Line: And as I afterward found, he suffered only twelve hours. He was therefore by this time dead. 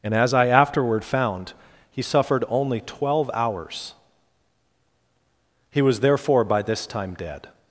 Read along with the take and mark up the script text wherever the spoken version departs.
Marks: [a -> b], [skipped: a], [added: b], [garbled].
And as I afterward found, he suffered only twelve hours. He was therefore by this time dead.